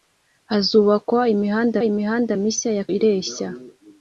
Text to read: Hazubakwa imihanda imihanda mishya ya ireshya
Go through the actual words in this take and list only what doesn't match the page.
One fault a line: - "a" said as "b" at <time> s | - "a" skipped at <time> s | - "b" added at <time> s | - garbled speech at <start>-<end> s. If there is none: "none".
none